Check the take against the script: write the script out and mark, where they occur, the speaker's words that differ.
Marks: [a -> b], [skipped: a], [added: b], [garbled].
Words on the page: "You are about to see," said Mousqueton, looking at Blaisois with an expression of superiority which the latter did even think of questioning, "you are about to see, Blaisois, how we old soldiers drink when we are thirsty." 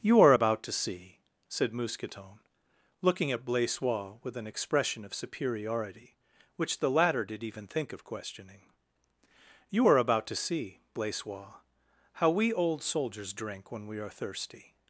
"You are about to see," said Mousqueton, looking at Blaisois with an expression of superiority which the latter did even think of questioning, "you are about to see, Blaisois, how we old soldiers drink when we are thirsty."